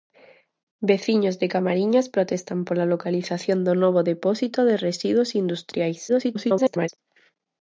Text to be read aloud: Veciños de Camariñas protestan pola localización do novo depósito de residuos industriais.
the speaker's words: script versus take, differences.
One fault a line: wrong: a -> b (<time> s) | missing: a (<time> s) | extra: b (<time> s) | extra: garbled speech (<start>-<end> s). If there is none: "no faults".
extra: garbled speech (6.1-6.9 s)